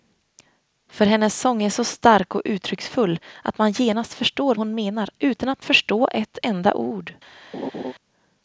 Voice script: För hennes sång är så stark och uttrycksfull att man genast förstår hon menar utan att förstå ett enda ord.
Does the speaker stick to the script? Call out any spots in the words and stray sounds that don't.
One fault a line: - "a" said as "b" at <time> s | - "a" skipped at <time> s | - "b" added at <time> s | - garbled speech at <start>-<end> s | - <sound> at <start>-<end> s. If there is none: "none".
- laugh at 7.5-7.9 s